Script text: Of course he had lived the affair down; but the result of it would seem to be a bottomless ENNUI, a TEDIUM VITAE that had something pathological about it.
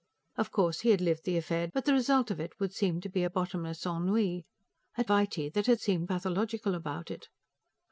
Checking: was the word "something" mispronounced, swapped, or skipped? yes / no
yes